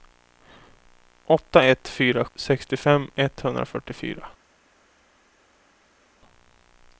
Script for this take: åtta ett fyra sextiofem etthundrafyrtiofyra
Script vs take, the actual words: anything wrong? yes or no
no